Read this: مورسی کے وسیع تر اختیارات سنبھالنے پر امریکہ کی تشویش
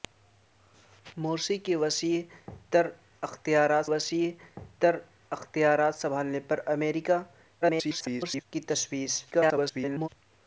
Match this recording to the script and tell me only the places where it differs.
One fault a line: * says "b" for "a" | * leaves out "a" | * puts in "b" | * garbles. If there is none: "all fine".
* puts in "وسیع تر اختیارات"
* garbles
* garbles